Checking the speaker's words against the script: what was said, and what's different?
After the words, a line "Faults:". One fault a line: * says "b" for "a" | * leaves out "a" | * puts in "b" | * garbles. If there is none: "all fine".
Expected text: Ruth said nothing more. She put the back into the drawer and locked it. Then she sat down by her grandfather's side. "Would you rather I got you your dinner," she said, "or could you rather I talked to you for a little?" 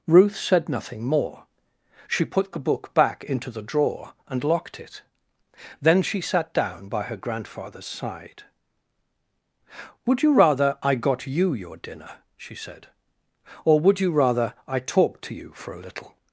Ruth said nothing more. She put the book back into the drawer and locked it. Then she sat down by her grandfather's side. "Would you rather I got you your dinner," she said, "or would you rather I talked to you for a little?"
Faults:
* puts in "book"
* says "would" for "could"